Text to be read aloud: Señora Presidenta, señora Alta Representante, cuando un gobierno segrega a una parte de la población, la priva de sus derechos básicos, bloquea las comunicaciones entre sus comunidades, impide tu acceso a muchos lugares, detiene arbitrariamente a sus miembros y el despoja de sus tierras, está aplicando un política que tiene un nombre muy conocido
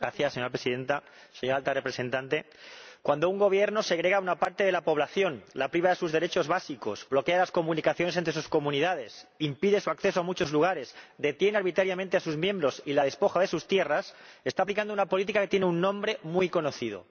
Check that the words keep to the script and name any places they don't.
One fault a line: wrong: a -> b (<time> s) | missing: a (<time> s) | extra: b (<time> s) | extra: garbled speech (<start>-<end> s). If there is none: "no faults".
wrong: tu -> su (9.8 s)
wrong: el -> la (12.9 s)
wrong: un -> una (14.9 s)